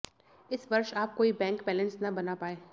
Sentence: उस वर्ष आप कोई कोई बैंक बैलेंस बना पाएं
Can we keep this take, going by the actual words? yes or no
no